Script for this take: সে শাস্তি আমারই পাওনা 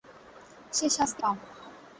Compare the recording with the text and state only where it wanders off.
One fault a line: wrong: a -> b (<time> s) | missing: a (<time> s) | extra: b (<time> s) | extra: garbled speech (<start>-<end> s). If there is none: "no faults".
missing: আমারই (1.2 s)